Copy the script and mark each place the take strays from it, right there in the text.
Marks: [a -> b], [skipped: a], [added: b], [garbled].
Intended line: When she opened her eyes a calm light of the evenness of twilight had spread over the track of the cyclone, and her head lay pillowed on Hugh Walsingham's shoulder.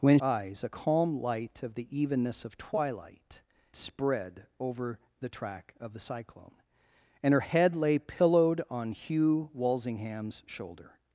When [skipped: she opened her] eyes a calm light of the evenness of twilight [skipped: had] spread over the track of the cyclone, and her head lay pillowed on Hugh Walsingham's shoulder.